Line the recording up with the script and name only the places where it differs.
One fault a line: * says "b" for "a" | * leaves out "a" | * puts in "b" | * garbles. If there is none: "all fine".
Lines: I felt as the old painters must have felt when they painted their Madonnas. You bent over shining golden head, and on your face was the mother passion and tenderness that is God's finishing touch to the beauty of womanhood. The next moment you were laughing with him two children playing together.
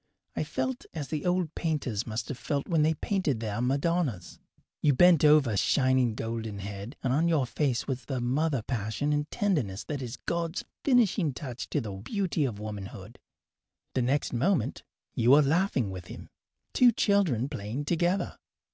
all fine